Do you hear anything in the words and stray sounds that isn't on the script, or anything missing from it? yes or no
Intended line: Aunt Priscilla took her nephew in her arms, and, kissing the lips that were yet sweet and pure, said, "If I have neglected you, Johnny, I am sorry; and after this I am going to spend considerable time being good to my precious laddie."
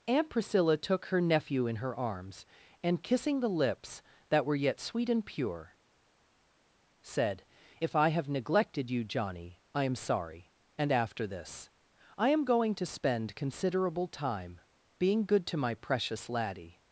no